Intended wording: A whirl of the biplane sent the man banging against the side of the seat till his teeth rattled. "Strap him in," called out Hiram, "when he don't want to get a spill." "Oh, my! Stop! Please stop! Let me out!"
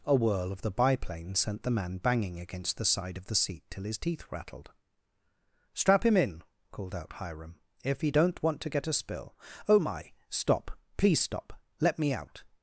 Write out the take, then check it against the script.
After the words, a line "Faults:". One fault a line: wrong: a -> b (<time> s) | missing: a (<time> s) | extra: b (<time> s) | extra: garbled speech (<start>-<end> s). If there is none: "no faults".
A whirl of the biplane sent the man banging against the side of the seat till his teeth rattled. "Strap him in," called out Hiram, "if he don't want to get a spill." "Oh, my! Stop! Please stop! Let me out!"
Faults:
wrong: when -> if (7.8 s)